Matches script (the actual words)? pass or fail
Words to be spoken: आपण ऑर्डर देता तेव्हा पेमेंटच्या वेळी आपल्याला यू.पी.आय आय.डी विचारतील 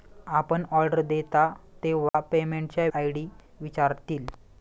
fail